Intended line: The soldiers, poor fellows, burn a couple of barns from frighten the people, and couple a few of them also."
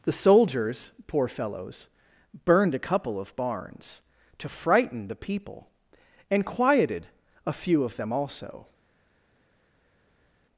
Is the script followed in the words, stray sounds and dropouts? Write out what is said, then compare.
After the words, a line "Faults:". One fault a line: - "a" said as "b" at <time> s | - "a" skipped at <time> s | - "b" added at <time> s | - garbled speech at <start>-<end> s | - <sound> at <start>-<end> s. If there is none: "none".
The soldiers, poor fellows, burned a couple of barns to frighten the people, and quieted a few of them also."
Faults:
- "burn" said as "burned" at 2.5 s
- "from" said as "to" at 4.4 s
- "couple" said as "quieted" at 6.5 s